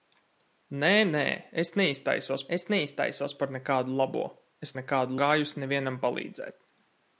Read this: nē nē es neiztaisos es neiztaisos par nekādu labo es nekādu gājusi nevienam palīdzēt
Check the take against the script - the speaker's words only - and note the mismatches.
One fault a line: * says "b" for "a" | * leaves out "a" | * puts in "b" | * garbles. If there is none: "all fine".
all fine